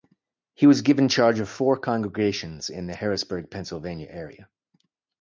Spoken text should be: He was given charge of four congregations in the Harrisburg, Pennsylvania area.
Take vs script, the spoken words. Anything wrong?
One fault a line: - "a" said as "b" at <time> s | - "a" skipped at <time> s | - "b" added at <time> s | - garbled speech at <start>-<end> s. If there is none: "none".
none